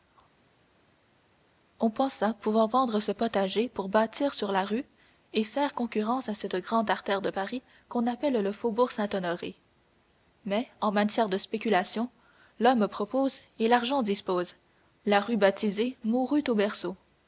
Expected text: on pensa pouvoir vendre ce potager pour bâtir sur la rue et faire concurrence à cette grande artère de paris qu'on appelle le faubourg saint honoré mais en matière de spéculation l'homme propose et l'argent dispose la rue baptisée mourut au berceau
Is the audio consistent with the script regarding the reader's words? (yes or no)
yes